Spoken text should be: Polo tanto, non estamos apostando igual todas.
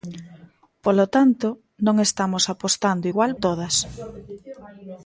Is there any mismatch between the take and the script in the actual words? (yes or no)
no